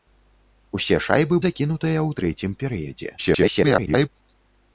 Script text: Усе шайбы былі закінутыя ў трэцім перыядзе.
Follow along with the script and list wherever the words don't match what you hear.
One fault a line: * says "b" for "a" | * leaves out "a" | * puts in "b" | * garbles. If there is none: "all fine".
* leaves out "былі"
* garbles